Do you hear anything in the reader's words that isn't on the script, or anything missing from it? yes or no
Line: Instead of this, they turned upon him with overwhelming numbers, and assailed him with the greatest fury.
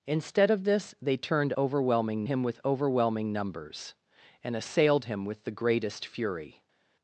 yes